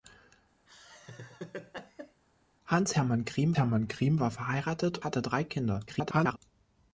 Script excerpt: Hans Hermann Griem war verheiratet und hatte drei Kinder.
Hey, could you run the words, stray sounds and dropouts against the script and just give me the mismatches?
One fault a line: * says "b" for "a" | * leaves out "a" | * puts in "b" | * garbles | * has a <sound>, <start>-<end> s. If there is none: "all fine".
* has a laugh, 0.7-2.2 s
* puts in "Hermann Griem"
* leaves out "und"
* garbles